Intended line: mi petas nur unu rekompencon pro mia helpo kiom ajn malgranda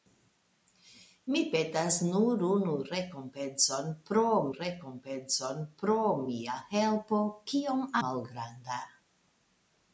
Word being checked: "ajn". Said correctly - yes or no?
no